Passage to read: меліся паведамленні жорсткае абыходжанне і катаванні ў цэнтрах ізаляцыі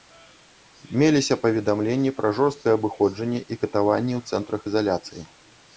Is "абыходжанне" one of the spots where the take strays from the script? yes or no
no